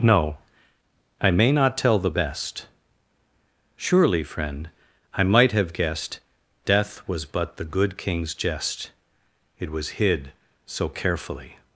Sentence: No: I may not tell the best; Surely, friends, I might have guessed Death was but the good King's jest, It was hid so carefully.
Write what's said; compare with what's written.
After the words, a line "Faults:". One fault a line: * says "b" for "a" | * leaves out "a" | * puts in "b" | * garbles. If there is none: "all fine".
No: I may not tell the best; Surely, friend, I might have guessed Death was but the good King's jest, It was hid so carefully.
Faults:
* says "friend" for "friends"